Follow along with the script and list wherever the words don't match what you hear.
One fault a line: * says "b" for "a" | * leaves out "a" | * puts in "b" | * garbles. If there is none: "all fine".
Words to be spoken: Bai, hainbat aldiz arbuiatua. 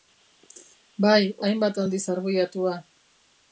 all fine